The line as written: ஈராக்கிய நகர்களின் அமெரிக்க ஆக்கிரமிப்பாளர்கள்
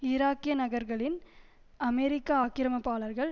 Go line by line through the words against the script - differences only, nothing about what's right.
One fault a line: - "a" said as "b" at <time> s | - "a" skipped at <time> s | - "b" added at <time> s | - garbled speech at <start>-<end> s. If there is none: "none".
none